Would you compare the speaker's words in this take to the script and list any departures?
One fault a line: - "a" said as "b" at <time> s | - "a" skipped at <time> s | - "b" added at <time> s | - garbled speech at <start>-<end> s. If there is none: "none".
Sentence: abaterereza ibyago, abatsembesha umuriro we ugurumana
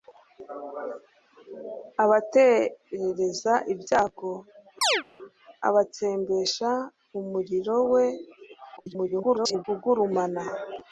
- garbled speech at 8.8-9.7 s